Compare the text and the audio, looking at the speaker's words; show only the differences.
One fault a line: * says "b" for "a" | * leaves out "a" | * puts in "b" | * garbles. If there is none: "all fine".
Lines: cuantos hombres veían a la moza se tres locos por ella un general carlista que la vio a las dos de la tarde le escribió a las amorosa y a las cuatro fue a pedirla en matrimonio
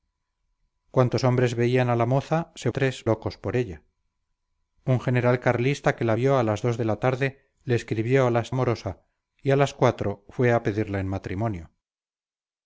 all fine